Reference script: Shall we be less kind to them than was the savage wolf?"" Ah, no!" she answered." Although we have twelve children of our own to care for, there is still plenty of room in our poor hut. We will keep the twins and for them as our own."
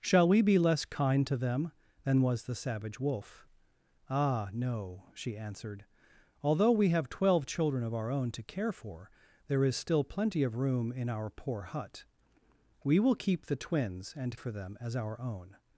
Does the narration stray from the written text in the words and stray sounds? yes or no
no